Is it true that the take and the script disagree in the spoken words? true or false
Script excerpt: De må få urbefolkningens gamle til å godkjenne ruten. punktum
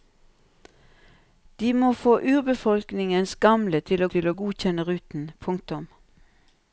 true